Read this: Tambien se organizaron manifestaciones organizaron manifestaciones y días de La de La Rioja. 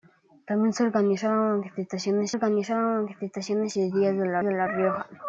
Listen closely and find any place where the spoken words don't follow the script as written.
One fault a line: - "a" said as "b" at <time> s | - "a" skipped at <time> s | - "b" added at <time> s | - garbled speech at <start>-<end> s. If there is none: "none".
none